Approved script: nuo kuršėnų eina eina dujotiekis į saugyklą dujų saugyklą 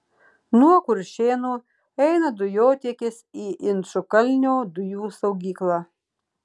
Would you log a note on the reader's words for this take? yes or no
yes